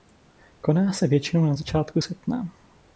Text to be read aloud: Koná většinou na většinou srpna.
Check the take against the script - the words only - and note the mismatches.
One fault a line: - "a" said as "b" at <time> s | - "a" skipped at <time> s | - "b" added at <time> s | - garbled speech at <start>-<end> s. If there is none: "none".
- "se" added at 0.9 s
- "většinou" said as "začátku" at 1.5 s